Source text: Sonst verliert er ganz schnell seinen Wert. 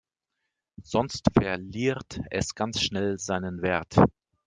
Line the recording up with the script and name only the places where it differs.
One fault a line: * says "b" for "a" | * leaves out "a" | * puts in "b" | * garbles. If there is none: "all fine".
* says "es" for "er"